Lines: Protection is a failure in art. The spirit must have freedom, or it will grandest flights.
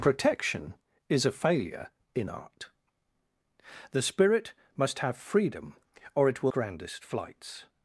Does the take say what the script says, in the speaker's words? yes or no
yes